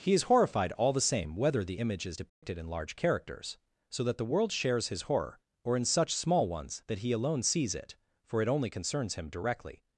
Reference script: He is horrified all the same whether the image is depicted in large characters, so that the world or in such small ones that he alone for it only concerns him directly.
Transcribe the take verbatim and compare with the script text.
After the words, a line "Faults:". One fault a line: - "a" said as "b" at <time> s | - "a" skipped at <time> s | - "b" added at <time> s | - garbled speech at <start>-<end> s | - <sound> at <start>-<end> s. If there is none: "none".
He is horrified all the same whether the image is depicted in large characters, so that the world shares his horror, or in such small ones that he alone sees it, for it only concerns him directly.
Faults:
- dropout at 2.3-2.4 s
- "shares his horror" added at 4.5 s
- "sees it" added at 7.4 s